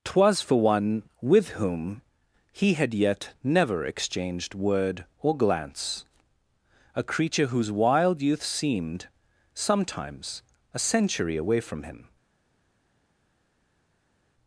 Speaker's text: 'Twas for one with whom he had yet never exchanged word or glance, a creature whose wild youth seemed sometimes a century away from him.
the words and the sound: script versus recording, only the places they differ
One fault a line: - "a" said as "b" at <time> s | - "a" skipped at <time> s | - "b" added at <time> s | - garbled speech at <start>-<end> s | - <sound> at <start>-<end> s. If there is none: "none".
none